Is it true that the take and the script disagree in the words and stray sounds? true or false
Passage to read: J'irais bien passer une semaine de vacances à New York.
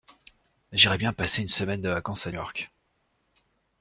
true